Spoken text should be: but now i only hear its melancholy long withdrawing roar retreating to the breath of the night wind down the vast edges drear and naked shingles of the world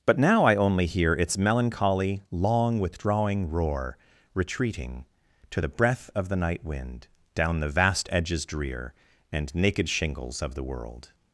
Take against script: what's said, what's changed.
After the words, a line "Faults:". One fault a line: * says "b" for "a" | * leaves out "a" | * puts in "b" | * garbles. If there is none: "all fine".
but now i only hear its melancholy long withdrawing roar retreating to the breath of the night wind down the vast edges drear and naked shingles of the world
Faults:
all fine